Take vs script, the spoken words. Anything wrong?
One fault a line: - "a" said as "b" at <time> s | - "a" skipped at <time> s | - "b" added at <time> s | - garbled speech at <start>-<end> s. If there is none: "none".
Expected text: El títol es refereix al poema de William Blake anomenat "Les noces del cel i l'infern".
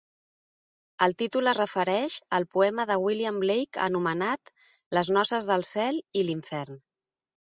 none